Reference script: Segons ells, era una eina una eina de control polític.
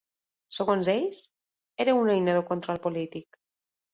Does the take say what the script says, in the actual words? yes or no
no